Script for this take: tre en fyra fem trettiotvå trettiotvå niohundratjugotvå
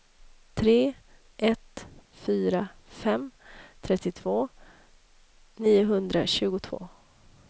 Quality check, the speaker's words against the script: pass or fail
fail